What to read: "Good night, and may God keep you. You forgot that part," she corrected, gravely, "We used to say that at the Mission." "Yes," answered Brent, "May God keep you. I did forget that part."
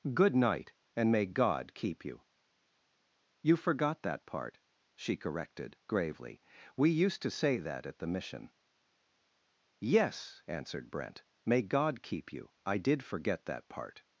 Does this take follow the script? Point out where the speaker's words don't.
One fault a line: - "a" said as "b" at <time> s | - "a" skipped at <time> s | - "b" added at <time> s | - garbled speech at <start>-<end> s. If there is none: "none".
none